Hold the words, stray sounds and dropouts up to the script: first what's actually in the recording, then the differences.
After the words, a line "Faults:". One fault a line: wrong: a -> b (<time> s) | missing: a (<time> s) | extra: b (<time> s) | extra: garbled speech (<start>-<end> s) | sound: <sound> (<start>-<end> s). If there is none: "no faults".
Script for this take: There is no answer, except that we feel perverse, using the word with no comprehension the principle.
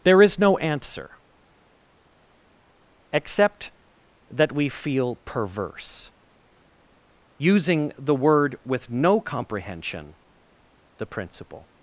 There is no answer, except that we feel perverse, using the word with no comprehension the principle.
Faults:
no faults